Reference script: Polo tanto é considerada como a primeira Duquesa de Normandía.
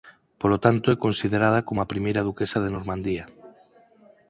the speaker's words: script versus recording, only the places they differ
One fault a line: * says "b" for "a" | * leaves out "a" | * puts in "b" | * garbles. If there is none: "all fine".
all fine